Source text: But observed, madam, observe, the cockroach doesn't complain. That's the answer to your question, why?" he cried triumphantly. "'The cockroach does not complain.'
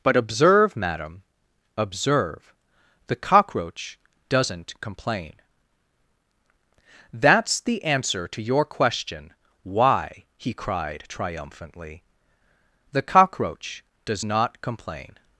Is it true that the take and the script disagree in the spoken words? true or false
true